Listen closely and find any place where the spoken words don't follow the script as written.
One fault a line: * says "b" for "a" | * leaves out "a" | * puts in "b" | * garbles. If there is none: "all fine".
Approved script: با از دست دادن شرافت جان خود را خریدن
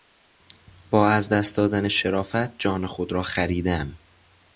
all fine